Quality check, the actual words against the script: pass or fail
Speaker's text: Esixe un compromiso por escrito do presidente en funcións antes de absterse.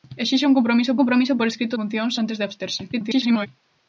fail